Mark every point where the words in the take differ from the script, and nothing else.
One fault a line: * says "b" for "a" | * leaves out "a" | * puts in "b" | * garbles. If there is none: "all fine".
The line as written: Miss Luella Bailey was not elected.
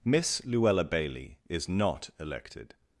* says "is" for "was"